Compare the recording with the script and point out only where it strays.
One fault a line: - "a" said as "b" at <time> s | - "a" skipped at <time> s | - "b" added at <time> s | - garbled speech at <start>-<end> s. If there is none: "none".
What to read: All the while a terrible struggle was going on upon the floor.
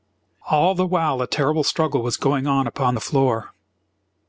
none